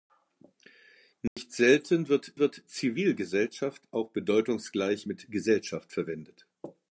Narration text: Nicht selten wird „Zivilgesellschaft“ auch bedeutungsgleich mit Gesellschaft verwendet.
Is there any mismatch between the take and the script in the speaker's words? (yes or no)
yes